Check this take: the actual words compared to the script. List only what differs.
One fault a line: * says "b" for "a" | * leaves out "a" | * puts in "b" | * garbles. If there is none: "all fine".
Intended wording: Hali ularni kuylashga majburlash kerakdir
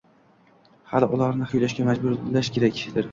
all fine